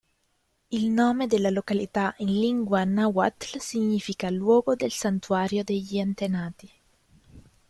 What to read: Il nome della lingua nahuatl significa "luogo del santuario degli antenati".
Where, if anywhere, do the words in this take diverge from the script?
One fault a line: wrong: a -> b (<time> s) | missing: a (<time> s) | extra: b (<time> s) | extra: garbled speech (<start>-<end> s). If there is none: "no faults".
extra: località in (1.5 s)